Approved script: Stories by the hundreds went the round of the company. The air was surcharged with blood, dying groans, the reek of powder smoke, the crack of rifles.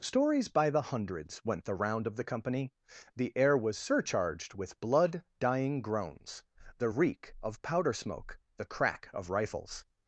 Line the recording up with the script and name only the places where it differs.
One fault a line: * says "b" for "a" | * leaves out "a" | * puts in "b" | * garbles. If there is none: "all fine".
all fine